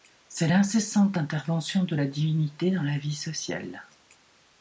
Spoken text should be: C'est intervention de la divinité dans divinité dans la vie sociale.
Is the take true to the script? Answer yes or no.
no